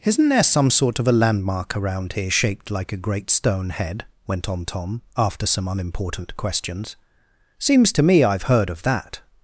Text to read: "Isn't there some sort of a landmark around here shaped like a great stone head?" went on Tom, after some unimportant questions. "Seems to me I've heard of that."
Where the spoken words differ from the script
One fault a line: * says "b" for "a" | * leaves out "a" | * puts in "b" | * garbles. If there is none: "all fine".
all fine